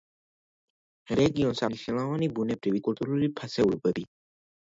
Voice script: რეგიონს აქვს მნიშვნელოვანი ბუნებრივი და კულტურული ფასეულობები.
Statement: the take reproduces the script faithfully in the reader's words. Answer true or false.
false